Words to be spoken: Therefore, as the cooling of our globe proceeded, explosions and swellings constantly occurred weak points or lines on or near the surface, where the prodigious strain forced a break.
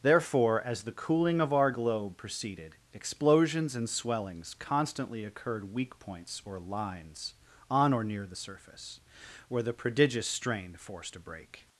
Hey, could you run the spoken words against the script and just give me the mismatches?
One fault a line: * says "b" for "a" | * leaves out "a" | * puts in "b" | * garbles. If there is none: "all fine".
all fine